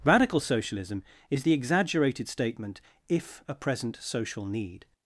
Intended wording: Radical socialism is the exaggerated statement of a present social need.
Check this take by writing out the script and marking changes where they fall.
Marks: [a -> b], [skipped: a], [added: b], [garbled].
Radical socialism is the exaggerated statement [of -> if] a present social need.